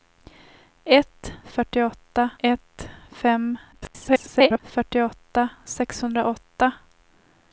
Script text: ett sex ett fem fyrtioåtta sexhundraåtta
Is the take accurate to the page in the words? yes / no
no